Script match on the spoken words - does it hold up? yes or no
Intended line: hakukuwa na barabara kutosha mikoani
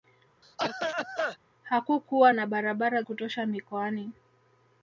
yes